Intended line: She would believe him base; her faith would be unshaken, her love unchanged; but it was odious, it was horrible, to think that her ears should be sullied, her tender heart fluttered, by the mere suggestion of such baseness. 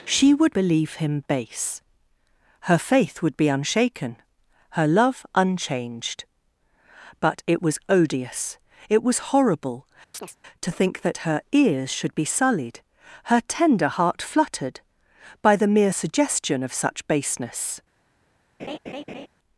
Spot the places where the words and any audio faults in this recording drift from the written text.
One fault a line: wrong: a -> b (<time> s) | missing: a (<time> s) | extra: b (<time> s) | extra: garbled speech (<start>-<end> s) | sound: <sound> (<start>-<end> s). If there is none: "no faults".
sound: chirp (10.1-10.4 s)
sound: laugh (18.6-19.3 s)